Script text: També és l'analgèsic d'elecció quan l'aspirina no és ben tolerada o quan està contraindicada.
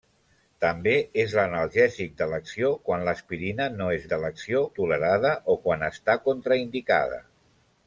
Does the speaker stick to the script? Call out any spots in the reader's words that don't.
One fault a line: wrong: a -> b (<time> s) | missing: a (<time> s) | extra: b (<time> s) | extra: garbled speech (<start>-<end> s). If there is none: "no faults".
wrong: ben -> d'elecció (4.1 s)